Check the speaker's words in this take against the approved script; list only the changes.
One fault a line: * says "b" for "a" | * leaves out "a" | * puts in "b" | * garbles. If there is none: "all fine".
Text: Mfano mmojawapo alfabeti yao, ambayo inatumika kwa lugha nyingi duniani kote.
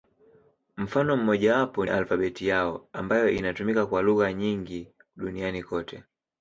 all fine